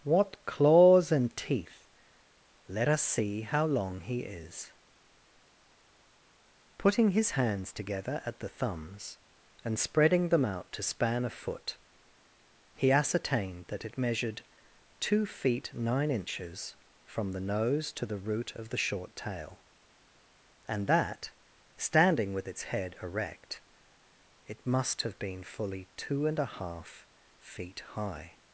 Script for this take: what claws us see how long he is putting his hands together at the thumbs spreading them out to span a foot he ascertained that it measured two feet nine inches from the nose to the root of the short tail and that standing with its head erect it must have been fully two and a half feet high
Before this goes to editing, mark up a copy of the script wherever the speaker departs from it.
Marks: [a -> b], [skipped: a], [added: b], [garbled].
what claws [added: and teeth let] us see how long he is putting his hands together at the thumbs [added: and] spreading them out to span a foot he ascertained that it measured two feet nine inches from the nose to the root of the short tail and that standing with its head erect it must have been fully two and a half feet high